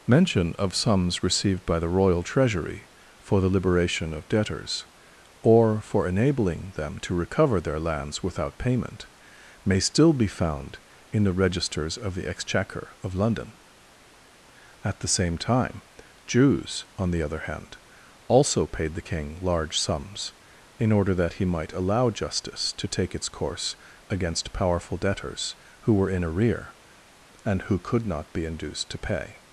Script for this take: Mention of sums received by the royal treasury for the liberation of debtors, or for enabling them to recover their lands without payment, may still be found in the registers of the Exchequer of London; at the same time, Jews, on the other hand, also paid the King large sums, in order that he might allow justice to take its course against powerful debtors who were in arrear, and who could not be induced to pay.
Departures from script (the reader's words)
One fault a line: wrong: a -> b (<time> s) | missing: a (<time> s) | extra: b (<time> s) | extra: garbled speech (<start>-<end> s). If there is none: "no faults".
no faults